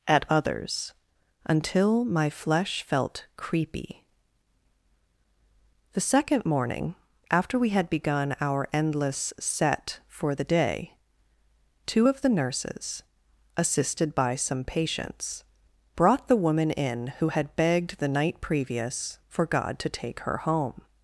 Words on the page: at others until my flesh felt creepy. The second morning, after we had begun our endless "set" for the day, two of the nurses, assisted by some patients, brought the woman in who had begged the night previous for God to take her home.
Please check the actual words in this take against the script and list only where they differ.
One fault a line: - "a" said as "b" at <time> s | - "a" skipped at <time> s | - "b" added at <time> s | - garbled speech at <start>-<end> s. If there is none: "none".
none